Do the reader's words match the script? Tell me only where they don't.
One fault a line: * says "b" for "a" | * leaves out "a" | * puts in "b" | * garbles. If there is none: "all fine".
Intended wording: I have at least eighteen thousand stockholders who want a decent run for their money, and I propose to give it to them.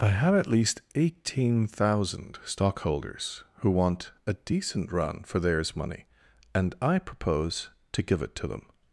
* says "theirs" for "their"